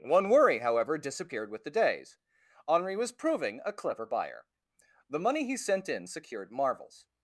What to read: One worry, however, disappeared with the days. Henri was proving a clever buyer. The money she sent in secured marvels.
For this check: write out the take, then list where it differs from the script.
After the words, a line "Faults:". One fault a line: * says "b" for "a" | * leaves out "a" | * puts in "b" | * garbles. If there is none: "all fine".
One worry, however, disappeared with the days. Henri was proving a clever buyer. The money he sent in secured marvels.
Faults:
* says "he" for "she"